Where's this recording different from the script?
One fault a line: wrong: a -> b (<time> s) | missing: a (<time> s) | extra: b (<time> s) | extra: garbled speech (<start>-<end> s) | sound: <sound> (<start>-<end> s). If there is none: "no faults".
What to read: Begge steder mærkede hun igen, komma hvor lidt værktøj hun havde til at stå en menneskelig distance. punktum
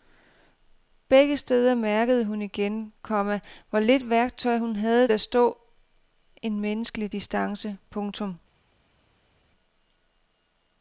missing: til (5.1 s)